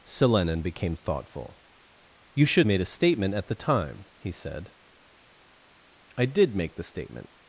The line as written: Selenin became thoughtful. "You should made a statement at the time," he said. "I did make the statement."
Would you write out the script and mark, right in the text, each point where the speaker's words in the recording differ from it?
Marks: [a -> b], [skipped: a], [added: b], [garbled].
Selenin became thoughtful. "You should made a statement at the time," he said. "I did make the statement."